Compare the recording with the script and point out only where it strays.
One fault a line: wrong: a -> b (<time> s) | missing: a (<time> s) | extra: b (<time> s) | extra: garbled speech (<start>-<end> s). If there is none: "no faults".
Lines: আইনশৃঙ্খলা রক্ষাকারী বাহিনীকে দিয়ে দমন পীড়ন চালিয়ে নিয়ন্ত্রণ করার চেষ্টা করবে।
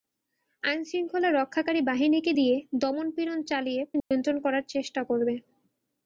no faults